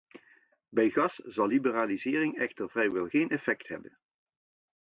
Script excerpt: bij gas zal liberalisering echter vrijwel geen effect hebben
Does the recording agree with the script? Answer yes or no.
yes